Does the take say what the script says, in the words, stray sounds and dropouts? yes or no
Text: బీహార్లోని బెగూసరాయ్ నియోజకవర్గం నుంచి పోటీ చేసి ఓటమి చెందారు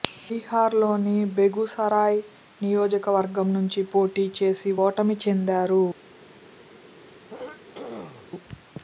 no